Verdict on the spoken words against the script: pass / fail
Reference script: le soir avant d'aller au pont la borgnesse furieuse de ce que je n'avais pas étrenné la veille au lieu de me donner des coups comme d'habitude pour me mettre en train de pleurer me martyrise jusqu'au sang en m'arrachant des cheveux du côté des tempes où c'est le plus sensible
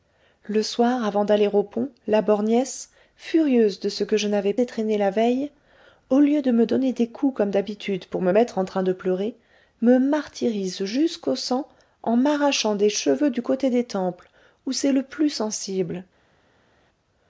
fail